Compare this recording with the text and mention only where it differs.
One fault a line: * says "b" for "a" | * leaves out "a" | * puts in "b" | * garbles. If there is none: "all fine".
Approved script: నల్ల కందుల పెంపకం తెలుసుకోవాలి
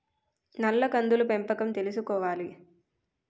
all fine